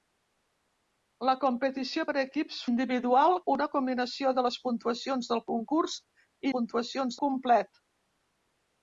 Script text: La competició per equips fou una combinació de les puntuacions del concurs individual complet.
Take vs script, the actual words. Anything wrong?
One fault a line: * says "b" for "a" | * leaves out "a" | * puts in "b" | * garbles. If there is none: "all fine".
* says "individual" for "fou"
* says "puntuacions" for "individual"